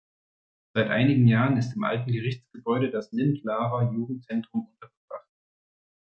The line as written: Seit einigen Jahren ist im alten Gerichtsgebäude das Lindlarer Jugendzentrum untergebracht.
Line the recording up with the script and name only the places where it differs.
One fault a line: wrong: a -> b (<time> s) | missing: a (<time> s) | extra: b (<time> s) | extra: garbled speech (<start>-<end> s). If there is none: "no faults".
no faults